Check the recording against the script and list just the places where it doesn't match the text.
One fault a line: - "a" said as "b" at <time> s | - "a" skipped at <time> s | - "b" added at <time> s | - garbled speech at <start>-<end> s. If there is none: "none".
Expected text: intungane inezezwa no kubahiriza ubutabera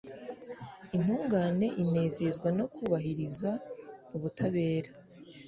none